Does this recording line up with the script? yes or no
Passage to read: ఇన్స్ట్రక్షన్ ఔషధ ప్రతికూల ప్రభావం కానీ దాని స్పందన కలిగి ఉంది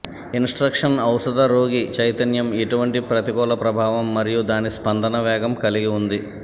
no